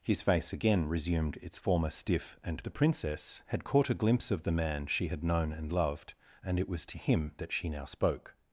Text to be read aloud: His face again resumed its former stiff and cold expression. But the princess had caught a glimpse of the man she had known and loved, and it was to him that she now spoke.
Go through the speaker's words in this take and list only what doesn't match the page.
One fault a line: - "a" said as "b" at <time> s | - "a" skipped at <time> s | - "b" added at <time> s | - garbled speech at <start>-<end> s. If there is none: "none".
- "cold expression But" skipped at 2.6 s